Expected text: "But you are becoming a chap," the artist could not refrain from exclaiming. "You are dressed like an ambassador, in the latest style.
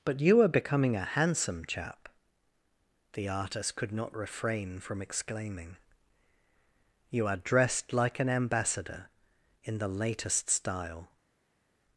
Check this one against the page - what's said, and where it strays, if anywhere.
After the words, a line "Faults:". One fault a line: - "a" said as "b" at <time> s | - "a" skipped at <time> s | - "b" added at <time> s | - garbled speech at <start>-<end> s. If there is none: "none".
"But you are becoming a handsome chap," the artist could not refrain from exclaiming. "You are dressed like an ambassador, in the latest style.
Faults:
- "handsome" added at 1.1 s